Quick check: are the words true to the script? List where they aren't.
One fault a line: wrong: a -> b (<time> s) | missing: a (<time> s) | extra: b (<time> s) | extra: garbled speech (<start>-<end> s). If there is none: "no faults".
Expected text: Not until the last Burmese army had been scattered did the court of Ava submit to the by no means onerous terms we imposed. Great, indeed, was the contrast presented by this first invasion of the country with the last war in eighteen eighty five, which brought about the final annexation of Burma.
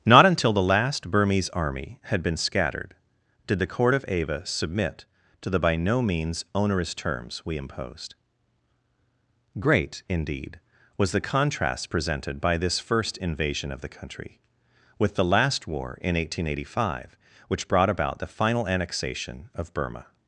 no faults